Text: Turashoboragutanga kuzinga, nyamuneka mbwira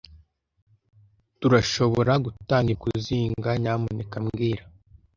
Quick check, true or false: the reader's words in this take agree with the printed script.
true